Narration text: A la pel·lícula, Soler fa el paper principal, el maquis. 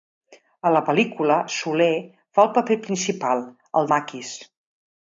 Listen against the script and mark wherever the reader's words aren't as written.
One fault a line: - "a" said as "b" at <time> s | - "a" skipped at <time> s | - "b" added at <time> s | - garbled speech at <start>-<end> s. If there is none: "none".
none